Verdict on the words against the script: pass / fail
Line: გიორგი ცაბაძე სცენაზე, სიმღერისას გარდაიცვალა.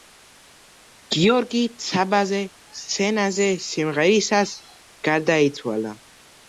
pass